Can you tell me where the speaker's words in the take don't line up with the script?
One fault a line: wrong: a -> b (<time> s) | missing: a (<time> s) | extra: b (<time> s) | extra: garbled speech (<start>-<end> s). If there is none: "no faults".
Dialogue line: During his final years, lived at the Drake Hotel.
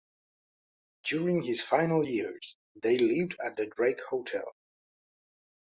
extra: they (2.8 s)